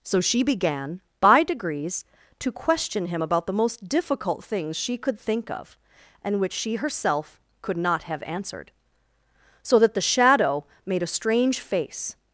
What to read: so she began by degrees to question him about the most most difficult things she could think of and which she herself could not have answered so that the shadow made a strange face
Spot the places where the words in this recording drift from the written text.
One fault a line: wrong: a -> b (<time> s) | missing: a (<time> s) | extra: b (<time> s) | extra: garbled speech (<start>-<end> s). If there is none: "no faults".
missing: most (3.9 s)